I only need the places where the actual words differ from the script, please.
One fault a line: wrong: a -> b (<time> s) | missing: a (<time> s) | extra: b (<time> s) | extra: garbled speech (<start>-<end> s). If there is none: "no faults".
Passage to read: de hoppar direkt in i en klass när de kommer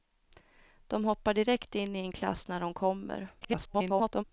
extra: garbled speech (3.4-4.2 s)